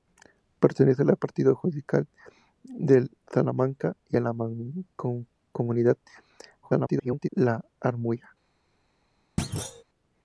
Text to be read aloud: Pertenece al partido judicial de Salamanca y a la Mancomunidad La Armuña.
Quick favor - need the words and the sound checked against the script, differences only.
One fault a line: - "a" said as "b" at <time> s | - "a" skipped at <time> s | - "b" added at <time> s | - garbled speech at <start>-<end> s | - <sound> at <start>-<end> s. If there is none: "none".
- garbled speech at 6.6-7.3 s
- thud at 9.4-9.8 s